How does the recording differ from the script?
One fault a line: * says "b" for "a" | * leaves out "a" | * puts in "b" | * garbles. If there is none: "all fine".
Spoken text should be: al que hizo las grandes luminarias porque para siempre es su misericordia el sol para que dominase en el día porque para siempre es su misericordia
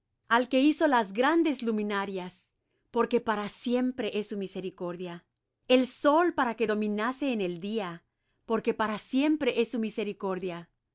all fine